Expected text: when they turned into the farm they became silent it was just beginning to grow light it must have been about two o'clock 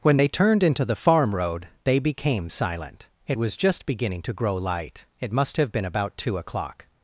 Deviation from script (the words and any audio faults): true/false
true